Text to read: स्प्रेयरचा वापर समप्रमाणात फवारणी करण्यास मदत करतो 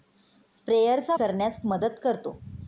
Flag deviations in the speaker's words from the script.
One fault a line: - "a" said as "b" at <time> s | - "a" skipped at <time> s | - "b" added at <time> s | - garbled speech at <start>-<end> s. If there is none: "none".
- "वापर समप्रमाणात फवारणी" skipped at 1.1 s